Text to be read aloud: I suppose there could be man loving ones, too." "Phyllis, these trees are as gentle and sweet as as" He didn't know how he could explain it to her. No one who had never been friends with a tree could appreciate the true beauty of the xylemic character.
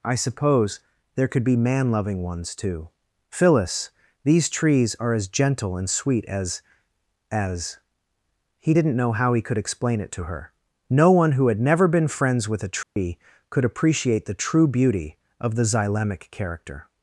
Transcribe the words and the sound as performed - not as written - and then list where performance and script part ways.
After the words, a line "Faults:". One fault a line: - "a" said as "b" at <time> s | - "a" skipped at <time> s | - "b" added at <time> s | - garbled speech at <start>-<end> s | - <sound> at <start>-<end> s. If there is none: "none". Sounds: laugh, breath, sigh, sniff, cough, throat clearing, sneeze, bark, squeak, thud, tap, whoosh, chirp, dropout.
I suppose there could be man loving ones, too." "Phyllis, these trees are as gentle and sweet as as" He didn't know how he could explain it to her. No one who had never been friends with a tree could appreciate the true beauty of the xylemic character.
Faults:
- dropout at 12.8-13.0 s